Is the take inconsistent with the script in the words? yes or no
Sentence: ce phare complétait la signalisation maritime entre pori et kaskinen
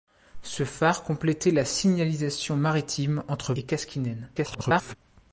yes